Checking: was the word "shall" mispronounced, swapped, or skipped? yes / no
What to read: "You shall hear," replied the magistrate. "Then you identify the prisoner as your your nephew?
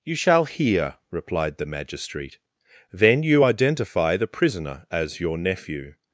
no